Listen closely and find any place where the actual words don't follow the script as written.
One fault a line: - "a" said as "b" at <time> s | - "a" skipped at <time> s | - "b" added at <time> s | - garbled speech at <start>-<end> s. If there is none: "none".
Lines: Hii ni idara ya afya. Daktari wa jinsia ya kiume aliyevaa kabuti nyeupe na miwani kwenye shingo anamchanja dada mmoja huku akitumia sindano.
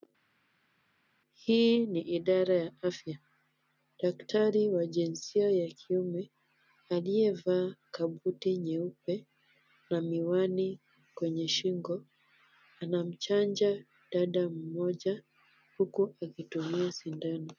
none